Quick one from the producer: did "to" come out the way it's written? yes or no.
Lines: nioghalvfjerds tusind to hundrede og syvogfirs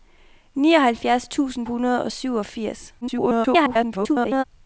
no